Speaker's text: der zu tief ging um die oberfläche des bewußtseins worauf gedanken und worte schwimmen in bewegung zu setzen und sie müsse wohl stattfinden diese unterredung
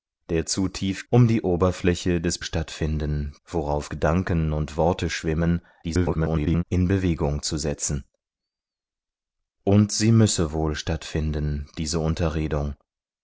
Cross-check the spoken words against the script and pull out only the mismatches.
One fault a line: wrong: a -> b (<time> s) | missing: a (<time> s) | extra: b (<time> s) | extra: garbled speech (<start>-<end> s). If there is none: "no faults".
missing: ging (1.1 s)
wrong: bewußtseins -> stattfinden (2.4 s)
extra: garbled speech (5.8-6.6 s)